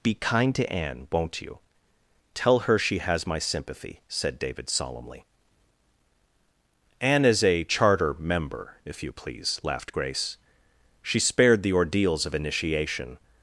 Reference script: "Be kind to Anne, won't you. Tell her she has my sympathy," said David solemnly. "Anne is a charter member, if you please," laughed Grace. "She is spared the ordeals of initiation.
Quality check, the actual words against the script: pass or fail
fail